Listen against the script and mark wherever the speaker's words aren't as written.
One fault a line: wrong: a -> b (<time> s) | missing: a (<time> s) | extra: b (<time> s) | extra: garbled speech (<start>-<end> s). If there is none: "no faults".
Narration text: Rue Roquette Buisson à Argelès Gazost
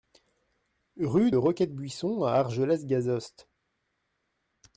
no faults